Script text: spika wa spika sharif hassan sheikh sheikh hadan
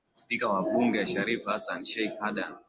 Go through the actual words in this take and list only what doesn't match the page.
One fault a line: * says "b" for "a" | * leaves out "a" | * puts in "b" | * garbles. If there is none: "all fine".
* says "bunge" for "spika"
* leaves out "sheikh"